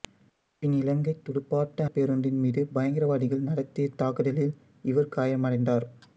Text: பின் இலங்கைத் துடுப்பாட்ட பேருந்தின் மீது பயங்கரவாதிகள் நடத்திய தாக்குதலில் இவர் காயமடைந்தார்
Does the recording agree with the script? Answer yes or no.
yes